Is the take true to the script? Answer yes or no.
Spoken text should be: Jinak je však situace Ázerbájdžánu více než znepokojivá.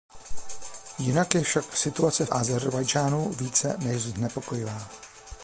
yes